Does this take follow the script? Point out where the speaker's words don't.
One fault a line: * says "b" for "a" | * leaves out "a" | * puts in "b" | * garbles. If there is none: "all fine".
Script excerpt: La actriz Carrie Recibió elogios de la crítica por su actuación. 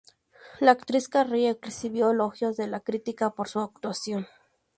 all fine